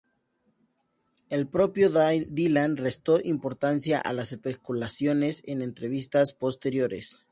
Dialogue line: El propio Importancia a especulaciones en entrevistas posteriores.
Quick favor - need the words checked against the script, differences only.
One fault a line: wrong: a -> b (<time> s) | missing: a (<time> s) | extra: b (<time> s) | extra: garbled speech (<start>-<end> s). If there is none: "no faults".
extra: Dylan restó (1.9 s)
extra: las (4.1 s)